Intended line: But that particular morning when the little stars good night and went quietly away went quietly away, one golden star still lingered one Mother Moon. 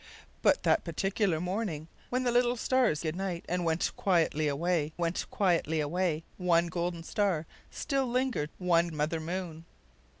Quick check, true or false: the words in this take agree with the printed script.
true